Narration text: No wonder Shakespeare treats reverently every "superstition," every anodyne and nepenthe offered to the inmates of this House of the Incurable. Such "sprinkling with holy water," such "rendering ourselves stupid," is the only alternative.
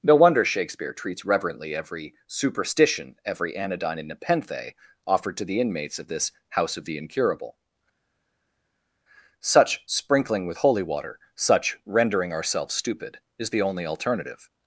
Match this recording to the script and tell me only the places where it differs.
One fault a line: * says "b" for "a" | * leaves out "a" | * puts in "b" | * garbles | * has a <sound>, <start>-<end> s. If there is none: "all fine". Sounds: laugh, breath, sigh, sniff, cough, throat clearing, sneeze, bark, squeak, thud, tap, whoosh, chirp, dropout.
all fine